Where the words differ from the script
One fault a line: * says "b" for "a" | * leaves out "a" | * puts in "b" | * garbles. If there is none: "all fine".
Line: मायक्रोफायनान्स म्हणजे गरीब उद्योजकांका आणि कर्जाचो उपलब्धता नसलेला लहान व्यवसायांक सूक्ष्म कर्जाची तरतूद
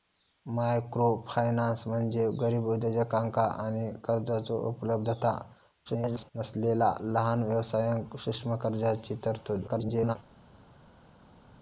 * garbles
* garbles